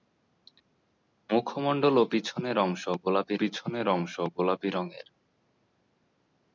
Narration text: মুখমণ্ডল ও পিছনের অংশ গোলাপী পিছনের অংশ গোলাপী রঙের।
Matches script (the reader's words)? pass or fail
pass